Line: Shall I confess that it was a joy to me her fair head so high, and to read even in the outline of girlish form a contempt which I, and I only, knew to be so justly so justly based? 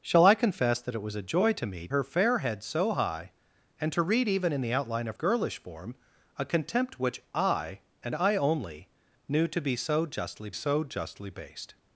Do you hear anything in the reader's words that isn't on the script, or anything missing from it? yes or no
no